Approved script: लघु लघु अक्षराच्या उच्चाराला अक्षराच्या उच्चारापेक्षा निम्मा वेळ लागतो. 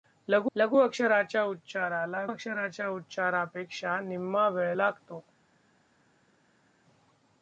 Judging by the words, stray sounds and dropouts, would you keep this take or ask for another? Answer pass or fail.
pass